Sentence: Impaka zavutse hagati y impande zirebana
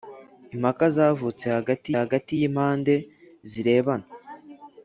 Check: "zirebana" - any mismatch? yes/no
no